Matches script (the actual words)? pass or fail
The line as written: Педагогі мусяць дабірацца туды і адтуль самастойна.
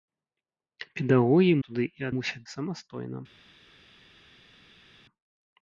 fail